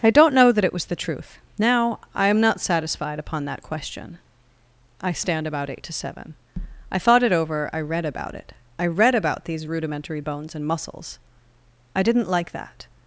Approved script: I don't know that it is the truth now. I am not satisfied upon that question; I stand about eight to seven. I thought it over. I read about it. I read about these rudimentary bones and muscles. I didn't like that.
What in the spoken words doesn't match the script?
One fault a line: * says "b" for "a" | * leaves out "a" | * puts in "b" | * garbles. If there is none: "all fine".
* says "was" for "is"